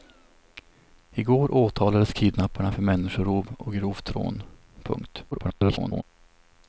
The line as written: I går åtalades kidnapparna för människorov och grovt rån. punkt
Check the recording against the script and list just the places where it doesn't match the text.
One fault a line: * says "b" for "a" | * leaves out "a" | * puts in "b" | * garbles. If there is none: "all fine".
* garbles